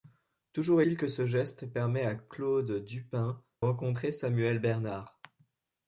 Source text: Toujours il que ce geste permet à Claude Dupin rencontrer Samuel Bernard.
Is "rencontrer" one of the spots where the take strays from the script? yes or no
no